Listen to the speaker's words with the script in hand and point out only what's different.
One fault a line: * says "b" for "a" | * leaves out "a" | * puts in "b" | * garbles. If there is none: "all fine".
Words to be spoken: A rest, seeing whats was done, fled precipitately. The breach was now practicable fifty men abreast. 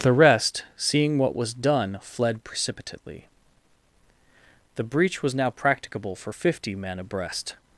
* says "The" for "A"
* says "what" for "whats"
* puts in "for"